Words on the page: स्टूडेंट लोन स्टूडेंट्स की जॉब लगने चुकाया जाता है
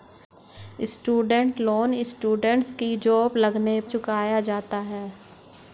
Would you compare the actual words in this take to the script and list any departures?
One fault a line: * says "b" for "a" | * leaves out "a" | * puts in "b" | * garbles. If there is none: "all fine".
all fine